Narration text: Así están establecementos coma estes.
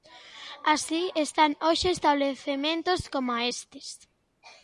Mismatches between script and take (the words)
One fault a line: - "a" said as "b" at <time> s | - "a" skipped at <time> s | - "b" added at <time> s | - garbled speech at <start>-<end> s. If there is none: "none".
- "hoxe" added at 1.7 s